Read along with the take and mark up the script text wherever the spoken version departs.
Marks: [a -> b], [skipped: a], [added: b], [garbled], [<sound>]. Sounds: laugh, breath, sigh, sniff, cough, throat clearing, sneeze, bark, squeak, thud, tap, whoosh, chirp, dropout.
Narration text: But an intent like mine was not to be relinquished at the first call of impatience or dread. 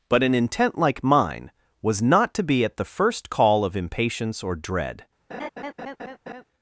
But an intent like mine was not to be [skipped: relinquished] at the first call of impatience or dread. [laugh]